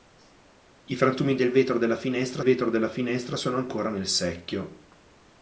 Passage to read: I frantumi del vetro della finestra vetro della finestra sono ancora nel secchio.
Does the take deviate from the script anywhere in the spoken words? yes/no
no